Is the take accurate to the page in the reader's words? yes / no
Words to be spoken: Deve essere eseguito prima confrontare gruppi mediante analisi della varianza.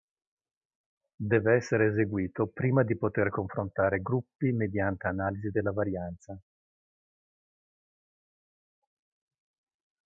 no